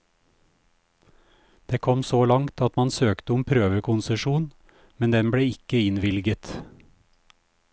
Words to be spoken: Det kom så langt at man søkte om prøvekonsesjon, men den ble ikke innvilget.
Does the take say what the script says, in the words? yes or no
yes